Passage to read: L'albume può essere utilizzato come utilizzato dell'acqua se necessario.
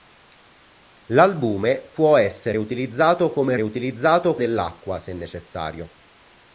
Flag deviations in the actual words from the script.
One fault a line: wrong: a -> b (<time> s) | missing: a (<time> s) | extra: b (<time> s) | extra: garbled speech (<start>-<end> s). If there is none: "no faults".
no faults